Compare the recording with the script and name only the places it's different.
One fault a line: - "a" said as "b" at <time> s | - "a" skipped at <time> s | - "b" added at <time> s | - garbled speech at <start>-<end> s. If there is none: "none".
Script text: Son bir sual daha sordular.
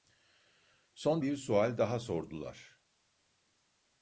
none